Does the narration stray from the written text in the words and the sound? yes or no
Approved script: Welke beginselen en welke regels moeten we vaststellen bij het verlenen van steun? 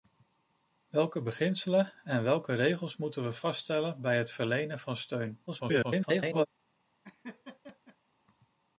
yes